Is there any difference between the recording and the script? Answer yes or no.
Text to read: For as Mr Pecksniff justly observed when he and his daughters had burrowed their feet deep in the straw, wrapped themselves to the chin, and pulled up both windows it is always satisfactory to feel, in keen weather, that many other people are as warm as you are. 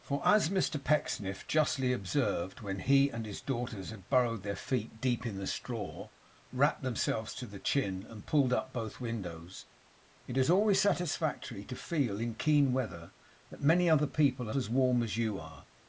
no